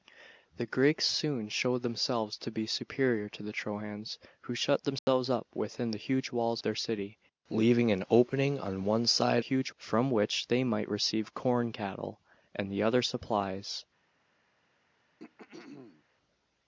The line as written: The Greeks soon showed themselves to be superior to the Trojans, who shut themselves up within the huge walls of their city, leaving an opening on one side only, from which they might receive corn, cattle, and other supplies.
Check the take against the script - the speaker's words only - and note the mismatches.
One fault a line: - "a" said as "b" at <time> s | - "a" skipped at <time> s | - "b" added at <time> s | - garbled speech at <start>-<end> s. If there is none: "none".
- "of" skipped at 6.6 s
- "only" said as "huge" at 9.4 s